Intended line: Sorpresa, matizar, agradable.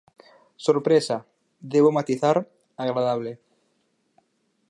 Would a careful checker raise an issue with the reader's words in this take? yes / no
yes